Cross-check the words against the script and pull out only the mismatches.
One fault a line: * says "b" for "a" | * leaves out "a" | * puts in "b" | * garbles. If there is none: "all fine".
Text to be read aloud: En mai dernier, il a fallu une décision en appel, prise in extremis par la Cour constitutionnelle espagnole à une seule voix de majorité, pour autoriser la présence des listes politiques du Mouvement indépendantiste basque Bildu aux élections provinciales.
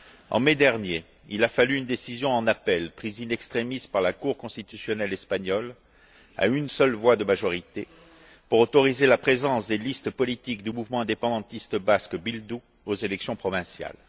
all fine